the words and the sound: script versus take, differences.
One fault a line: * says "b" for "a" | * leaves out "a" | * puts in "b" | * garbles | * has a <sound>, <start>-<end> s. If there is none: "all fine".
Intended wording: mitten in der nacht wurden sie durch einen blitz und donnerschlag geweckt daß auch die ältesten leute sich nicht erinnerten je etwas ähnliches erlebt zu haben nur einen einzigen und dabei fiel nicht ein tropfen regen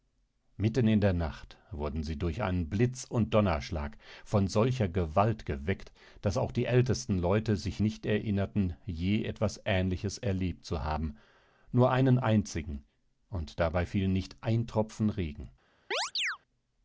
* puts in "von solcher gewalt"
* has a chirp, 15.9-16.4 s